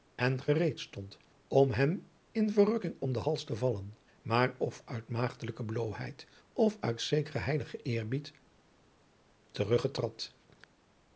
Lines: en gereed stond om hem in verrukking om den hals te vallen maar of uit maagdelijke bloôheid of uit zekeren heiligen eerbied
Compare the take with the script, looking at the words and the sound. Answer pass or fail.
pass